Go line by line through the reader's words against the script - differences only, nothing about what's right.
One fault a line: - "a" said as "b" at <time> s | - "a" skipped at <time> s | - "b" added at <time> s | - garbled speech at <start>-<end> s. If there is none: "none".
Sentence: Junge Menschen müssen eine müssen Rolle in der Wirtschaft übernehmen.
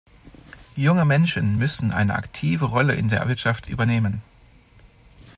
- "müssen" said as "aktive" at 2.1 s